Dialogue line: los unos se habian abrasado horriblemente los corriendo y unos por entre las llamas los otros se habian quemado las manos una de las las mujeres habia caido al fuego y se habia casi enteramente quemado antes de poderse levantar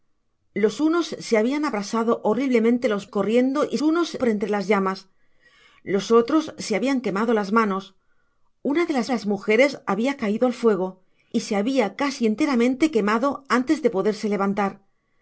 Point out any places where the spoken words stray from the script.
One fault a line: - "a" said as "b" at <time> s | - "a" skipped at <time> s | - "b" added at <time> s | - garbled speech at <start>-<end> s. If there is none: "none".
none